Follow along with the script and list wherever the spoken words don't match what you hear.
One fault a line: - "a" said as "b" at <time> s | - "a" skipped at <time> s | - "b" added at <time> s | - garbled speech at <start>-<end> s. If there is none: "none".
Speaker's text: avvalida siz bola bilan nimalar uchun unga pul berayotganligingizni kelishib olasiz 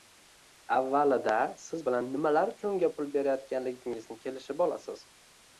- "bola" skipped at 1.8 s